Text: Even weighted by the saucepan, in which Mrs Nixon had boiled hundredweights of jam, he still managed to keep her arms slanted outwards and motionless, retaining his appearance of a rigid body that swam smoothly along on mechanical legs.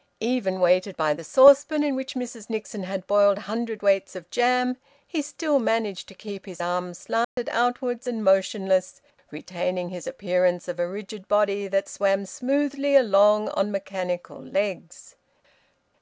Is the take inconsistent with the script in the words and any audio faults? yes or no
yes